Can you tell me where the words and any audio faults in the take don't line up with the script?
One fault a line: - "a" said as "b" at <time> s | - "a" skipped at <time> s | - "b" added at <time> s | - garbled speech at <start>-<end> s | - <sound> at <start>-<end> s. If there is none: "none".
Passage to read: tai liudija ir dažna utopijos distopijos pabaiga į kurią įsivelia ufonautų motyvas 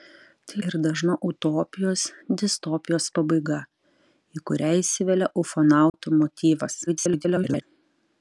- "liudija" skipped at 0.6 s
- dropout at 5.9-5.9 s
- garbled speech at 6.9-7.6 s